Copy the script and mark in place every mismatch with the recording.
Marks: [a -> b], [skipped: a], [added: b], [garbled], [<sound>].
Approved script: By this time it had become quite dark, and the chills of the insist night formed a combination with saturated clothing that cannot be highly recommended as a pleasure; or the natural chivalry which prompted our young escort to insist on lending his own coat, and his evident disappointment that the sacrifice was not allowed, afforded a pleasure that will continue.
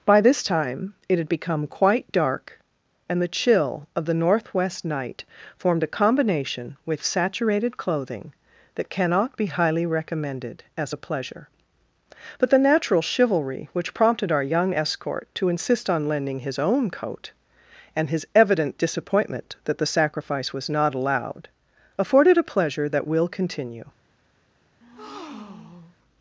By this time it had become quite dark, and the [chills -> chill] of the [insist -> northwest] night formed a combination with saturated clothing that cannot be highly recommended as a pleasure; [or -> but] the natural chivalry which prompted our young escort to insist on lending his own coat, and his evident disappointment that the sacrifice was not allowed, afforded a pleasure that will continue. [breath]